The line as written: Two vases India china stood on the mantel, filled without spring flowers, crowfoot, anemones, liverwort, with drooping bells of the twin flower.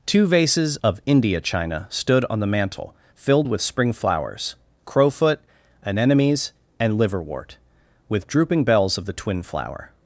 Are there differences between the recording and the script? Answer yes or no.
yes